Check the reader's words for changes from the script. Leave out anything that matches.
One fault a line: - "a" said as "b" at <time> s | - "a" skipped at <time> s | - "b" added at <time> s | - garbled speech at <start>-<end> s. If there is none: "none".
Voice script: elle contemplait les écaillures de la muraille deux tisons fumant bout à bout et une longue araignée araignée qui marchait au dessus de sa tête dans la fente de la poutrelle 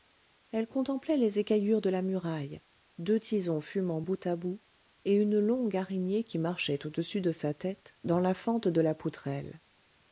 - "araignée" skipped at 6.2 s